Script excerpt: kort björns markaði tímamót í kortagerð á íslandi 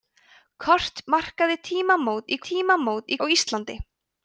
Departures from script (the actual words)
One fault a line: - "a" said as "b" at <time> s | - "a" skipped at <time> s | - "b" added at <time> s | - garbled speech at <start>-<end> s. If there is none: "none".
- "björns" skipped at 1.0 s
- "kortagerð" said as "tímamót" at 2.5 s